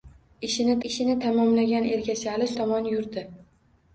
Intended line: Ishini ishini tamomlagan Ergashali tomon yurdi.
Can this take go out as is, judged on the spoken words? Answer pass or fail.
pass